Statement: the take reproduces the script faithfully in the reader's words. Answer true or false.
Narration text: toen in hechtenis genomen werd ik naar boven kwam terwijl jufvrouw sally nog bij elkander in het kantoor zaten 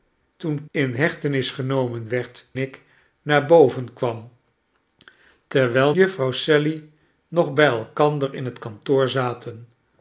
true